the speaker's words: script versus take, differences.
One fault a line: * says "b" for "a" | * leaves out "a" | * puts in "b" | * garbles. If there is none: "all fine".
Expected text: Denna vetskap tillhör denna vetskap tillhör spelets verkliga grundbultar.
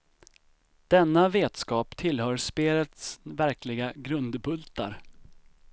* leaves out "denna vetskap tillhör"